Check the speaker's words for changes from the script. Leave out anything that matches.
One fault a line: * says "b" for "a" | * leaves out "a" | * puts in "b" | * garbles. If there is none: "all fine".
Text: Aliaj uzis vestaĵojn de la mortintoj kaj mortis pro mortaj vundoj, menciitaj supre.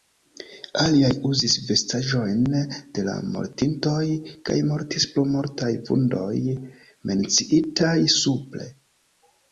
all fine